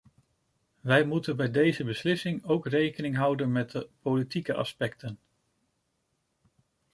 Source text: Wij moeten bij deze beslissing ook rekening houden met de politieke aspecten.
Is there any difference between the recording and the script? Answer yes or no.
no